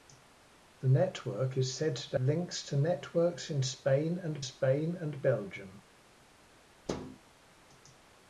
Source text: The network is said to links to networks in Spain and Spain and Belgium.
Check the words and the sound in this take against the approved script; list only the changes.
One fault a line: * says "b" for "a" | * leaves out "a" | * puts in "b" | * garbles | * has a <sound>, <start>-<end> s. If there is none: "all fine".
* has a thud, 6.9-7.2 s